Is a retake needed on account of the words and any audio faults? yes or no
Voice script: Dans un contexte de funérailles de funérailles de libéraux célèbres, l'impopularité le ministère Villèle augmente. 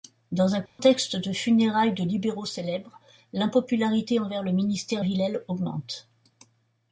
yes